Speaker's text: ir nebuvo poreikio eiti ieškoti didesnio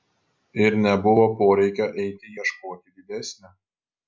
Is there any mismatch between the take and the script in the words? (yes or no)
no